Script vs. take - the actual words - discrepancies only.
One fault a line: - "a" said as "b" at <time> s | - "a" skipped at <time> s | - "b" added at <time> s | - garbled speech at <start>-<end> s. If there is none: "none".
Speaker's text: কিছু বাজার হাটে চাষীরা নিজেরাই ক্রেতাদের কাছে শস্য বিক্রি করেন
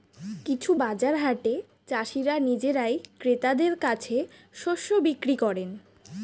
none